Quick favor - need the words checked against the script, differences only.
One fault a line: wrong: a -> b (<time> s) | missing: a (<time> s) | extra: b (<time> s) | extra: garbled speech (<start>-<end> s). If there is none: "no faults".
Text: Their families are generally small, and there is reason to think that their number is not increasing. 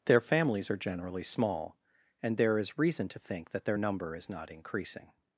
no faults